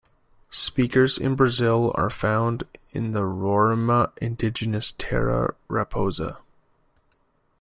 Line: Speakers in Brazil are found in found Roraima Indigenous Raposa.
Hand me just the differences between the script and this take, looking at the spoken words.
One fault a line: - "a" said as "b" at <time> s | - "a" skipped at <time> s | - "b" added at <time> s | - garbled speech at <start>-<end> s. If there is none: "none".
- "found" said as "the" at 3.1 s
- "Terra" added at 5.0 s